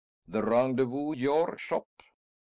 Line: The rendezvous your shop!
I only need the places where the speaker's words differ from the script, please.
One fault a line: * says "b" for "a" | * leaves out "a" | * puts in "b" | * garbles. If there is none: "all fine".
all fine